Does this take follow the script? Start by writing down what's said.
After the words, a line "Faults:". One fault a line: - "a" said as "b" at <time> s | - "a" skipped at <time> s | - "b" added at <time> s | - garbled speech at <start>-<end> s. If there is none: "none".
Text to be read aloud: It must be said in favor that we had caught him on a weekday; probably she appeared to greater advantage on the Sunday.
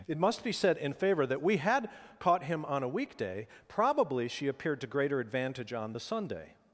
It must be said in favor that we had caught him on a weekday; probably she appeared to greater advantage on the Sunday.
Faults:
none